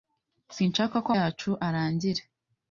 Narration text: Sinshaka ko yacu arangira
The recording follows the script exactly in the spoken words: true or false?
true